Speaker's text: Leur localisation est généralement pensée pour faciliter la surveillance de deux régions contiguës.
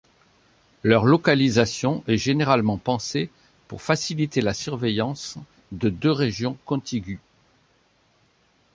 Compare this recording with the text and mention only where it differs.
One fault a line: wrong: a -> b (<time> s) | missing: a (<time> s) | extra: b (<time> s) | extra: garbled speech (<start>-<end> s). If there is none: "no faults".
no faults